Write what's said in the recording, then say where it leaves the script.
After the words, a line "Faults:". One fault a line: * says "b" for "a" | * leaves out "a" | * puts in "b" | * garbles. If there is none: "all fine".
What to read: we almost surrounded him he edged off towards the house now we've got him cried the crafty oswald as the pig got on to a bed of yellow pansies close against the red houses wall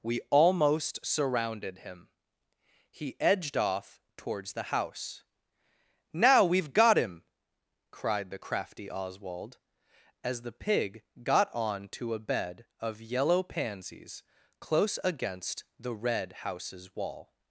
we almost surrounded him he edged off towards the house now we've got him cried the crafty oswald as the pig got on to a bed of yellow pansies close against the red houses wall
Faults:
all fine